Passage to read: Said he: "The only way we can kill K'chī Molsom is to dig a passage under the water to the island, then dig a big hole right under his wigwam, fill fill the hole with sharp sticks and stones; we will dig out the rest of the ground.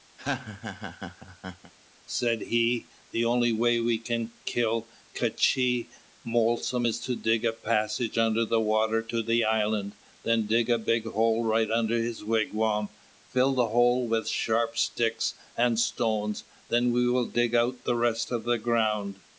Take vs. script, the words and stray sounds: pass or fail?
fail